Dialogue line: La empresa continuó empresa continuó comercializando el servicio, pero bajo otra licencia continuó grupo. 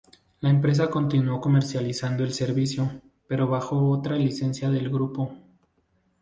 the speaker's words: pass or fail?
fail